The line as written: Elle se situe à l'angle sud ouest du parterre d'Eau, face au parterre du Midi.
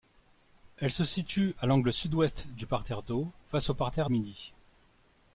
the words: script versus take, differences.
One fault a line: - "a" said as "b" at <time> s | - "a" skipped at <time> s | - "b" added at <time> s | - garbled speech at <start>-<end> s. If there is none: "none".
- "du" skipped at 4.1 s